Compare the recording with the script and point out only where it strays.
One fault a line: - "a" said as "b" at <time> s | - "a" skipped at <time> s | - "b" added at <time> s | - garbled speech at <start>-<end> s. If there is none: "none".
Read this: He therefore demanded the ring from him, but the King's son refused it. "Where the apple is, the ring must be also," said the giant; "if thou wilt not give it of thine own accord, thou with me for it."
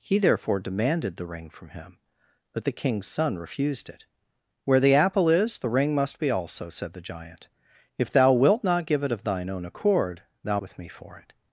none